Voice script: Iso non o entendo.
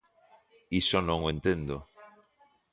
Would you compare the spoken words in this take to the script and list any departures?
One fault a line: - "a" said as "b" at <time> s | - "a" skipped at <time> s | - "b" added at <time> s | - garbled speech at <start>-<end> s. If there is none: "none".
none